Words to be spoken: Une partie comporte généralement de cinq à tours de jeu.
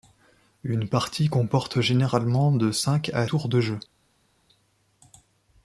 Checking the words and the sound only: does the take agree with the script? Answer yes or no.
yes